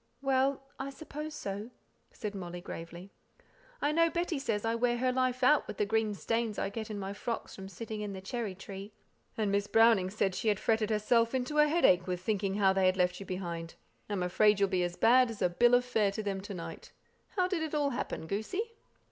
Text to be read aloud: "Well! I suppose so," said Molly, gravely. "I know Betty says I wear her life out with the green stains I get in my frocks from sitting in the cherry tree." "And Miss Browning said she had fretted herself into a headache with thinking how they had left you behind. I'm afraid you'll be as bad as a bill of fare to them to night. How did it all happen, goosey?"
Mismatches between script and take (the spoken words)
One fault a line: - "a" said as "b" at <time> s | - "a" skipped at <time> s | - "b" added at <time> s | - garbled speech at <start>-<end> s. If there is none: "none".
none